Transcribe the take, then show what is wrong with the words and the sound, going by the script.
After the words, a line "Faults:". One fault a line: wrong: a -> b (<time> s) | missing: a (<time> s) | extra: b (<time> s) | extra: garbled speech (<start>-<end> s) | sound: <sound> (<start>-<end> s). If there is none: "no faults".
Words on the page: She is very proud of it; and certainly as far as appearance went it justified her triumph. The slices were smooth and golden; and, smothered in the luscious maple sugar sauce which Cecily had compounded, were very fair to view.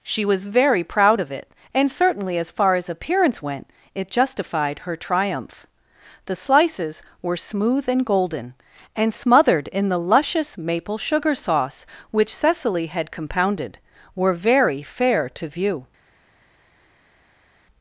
She was very proud of it; and certainly as far as appearance went it justified her triumph. The slices were smooth and golden; and, smothered in the luscious maple sugar sauce which Cecily had compounded, were very fair to view.
Faults:
wrong: is -> was (0.2 s)